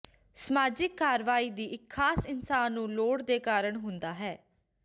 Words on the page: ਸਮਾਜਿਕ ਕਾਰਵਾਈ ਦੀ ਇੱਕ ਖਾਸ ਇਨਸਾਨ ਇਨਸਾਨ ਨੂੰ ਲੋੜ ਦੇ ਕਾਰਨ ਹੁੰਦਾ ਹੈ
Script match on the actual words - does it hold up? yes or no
no